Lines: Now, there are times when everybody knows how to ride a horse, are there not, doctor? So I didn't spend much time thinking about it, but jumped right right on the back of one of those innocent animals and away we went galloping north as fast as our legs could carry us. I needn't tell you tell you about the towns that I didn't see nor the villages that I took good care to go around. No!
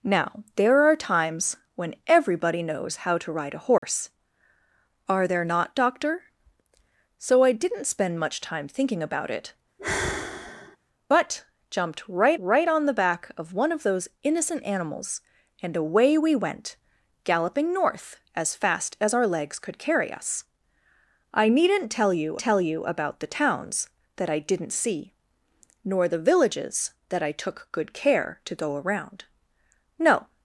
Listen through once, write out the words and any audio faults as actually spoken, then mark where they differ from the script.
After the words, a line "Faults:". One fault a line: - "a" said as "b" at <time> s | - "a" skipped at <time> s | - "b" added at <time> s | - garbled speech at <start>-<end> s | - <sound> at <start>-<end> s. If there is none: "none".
Now, there are times when everybody knows how to ride a horse, are there not, doctor? So I didn't spend much time thinking about it, but jumped right right on the back of one of those innocent animals and away we went galloping north as fast as our legs could carry us. I needn't tell you tell you about the towns that I didn't see nor the villages that I took good care to go around. No!
Faults:
- dropout at 3.8-3.8 s
- sigh at 9.8-10.8 s